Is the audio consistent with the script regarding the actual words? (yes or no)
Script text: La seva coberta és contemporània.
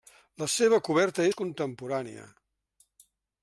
yes